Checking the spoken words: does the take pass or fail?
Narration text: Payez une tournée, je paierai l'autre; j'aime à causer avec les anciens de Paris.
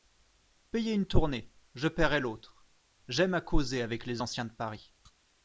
pass